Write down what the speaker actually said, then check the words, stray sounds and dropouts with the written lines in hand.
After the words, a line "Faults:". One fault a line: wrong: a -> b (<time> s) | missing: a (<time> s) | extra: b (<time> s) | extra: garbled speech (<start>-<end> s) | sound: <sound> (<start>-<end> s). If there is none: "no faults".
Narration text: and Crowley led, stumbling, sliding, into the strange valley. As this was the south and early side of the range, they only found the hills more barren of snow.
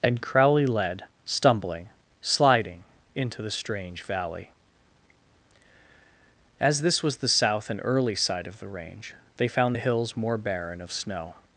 and Crowley led, stumbling, sliding, into the strange valley. As this was the south and early side of the range, they found the hills more barren of snow.
Faults:
missing: only (9.5 s)